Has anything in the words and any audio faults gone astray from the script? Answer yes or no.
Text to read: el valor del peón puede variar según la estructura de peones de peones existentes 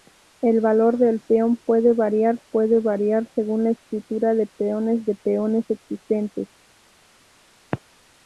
yes